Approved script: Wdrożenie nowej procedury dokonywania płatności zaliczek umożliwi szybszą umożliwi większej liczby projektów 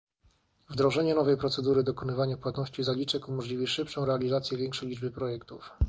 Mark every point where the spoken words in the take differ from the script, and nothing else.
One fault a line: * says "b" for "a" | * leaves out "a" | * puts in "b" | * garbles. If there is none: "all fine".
* says "realizację" for "umożliwi"